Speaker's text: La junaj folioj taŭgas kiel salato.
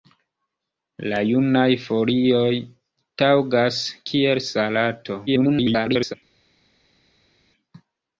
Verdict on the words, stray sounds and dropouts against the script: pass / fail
fail